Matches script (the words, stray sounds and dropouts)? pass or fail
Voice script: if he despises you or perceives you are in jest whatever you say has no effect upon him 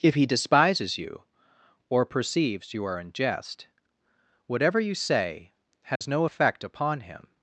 fail